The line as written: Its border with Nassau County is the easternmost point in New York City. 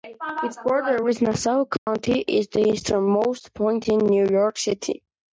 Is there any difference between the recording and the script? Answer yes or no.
no